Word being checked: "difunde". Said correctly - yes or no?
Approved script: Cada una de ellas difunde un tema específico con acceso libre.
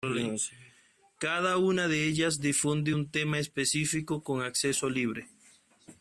yes